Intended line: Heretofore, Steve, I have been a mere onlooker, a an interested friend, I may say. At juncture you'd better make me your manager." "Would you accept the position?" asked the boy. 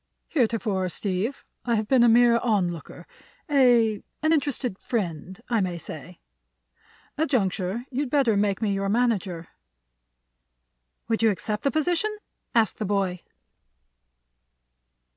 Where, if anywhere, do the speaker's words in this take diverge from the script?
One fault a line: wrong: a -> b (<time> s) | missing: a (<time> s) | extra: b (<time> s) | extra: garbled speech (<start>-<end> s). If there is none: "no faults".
no faults